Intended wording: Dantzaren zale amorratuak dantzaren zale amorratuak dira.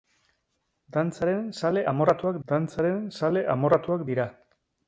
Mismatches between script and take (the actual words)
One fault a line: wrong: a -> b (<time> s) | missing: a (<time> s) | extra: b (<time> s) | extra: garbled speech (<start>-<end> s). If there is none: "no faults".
no faults